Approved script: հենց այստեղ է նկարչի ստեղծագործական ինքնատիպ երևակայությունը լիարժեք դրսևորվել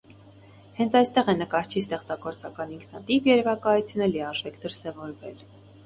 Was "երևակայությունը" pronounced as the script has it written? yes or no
yes